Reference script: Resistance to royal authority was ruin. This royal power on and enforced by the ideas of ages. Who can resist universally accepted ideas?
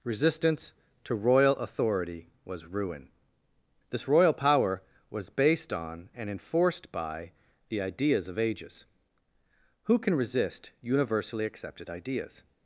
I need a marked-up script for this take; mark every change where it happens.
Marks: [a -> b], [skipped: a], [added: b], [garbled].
Resistance to royal authority was ruin. This royal power [added: was based] on and enforced by the ideas of ages. Who can resist universally accepted ideas?